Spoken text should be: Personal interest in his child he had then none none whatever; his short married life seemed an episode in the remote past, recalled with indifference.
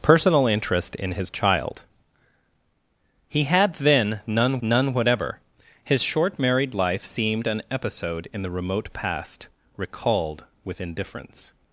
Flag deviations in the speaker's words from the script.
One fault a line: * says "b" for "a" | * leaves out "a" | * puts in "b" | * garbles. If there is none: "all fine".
all fine